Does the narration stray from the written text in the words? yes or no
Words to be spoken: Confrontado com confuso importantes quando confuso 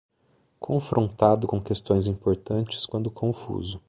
yes